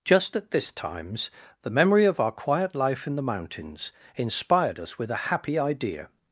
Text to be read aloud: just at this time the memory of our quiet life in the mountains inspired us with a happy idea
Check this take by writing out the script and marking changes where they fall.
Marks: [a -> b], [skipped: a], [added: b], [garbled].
just at this [time -> times] the memory of our quiet life in the mountains inspired us with a happy idea